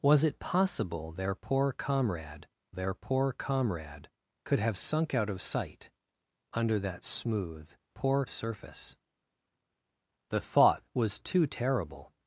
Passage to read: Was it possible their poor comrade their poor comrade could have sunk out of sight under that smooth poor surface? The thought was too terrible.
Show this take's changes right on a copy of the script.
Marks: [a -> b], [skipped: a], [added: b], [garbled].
Was it possible their poor comrade their poor comrade could have sunk out of sight under that smooth poor surface? The thought was too terrible.